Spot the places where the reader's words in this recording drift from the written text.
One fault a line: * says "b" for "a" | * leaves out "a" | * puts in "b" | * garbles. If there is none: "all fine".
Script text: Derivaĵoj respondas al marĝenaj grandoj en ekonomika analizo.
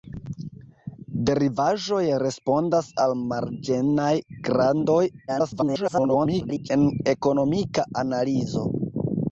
* garbles